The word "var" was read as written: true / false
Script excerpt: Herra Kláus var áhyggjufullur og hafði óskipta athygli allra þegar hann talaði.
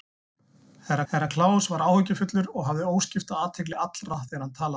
true